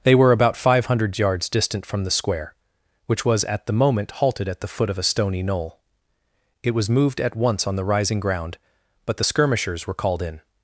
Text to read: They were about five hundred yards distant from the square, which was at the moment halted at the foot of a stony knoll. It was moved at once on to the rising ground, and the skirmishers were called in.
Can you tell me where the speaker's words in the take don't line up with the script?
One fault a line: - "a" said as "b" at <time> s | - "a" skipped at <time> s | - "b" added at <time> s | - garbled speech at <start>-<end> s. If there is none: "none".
- "to" skipped at 7.8 s
- "and" said as "but" at 9.1 s